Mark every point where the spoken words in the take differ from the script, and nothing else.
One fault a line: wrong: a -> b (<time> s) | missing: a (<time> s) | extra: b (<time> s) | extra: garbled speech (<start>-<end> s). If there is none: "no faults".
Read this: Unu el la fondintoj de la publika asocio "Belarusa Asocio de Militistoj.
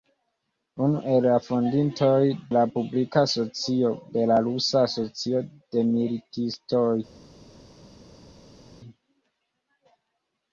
missing: de (2.2 s)